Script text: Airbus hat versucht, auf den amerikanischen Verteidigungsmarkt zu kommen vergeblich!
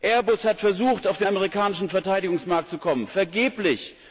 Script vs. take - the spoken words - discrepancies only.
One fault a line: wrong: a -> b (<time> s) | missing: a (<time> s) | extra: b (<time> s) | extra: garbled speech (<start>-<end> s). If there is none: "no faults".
no faults